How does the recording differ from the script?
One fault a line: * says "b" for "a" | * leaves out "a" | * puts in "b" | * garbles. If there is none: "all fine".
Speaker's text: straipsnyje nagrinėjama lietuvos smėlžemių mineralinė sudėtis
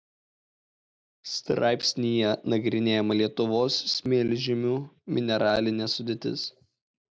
all fine